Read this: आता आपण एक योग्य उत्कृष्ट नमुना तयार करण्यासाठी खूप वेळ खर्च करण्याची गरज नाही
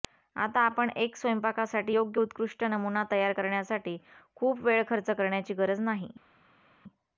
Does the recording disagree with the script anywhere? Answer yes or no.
yes